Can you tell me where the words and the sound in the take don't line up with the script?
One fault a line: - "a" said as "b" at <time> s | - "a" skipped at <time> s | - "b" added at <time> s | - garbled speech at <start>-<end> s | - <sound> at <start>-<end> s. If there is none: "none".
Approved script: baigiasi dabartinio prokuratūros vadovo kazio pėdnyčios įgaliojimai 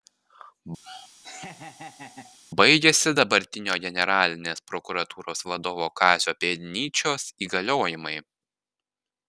- laugh at 0.8-2.4 s
- "generalinės" added at 3.8 s